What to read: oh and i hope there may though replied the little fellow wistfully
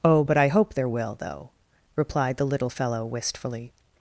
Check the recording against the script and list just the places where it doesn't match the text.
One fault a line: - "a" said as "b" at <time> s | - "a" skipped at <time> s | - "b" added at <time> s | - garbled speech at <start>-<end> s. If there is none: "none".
- "and" said as "but" at 0.2 s
- "may" said as "will" at 0.9 s